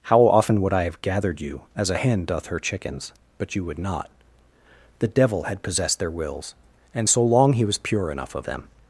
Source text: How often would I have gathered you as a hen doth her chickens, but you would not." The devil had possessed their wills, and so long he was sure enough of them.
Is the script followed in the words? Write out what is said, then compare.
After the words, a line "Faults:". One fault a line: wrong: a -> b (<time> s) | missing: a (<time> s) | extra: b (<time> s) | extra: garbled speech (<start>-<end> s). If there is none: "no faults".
How often would I have gathered you as a hen doth her chickens, but you would not." The devil had possessed their wills, and so long he was pure enough of them.
Faults:
wrong: sure -> pure (7.8 s)